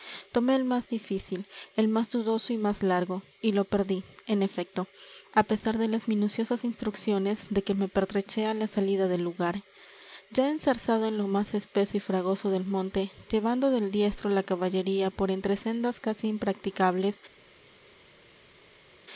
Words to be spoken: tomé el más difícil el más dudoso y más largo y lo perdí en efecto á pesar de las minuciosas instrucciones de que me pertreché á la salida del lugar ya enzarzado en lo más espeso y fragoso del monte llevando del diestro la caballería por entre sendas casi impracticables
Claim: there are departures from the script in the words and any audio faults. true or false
false